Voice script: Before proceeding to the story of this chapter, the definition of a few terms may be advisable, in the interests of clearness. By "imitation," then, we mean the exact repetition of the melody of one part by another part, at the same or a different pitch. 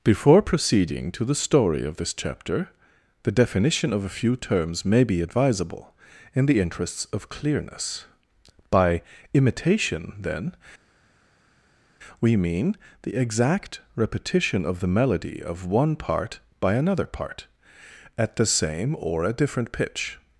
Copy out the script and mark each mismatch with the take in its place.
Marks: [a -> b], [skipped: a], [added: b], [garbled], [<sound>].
Before proceeding to the story of this chapter, the definition of a few terms may be advisable, in the interests of clearness. By "imitation," then, we mean the exact repetition of the melody of one part by another part, at the same or a different pitch.